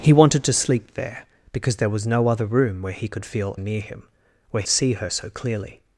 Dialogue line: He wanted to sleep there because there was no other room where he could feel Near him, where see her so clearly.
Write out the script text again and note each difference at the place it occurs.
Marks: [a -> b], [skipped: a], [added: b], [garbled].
He wanted to sleep there because there was no other room where he could feel Near him, where see her so clearly.